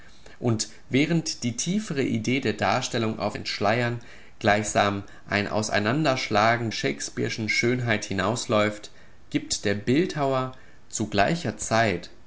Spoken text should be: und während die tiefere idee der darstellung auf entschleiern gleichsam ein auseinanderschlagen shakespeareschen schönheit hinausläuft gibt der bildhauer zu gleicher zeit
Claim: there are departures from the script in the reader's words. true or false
false